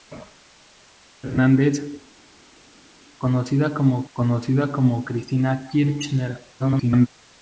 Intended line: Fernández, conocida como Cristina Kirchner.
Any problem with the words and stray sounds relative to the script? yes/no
yes